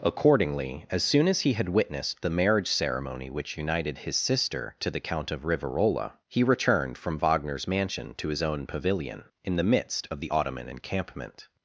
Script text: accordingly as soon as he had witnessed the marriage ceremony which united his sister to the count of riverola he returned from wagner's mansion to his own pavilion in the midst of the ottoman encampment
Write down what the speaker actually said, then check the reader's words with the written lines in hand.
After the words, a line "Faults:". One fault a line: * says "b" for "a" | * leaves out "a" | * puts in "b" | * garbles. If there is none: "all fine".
accordingly as soon as he had witnessed the marriage ceremony which united his sister to the count of riverola he returned from wagner's mansion to his own pavilion in the midst of the ottoman encampment
Faults:
all fine